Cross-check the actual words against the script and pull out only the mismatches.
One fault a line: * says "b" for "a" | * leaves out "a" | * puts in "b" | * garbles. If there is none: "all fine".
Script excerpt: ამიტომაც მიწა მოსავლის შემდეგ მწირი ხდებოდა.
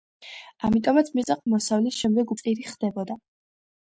all fine